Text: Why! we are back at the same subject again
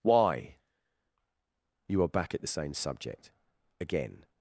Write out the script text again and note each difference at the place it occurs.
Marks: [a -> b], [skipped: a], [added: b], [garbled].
Why! [we -> you] are back at the same subject again